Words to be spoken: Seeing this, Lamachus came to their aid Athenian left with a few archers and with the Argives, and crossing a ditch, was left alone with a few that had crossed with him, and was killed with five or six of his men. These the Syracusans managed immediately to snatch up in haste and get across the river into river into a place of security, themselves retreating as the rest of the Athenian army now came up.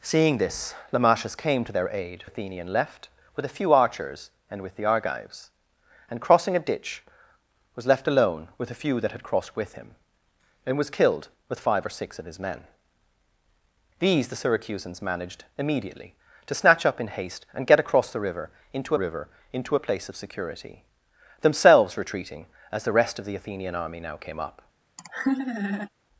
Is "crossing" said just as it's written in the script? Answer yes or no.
yes